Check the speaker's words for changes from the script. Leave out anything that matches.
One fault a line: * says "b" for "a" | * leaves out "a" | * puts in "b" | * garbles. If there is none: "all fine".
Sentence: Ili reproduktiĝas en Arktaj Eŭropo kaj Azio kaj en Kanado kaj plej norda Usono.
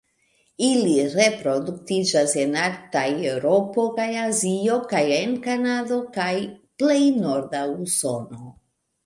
all fine